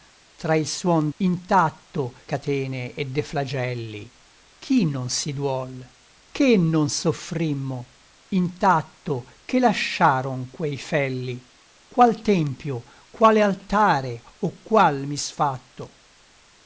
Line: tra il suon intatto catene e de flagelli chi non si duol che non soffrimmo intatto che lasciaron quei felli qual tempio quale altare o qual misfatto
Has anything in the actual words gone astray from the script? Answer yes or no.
no